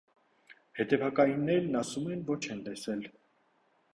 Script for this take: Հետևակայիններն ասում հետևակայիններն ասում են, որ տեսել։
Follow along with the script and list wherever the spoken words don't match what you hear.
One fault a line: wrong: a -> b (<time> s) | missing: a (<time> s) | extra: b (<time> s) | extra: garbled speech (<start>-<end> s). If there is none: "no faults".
missing: հետևակայիններն ասում (2.1 s)
extra: չեն (2.5 s)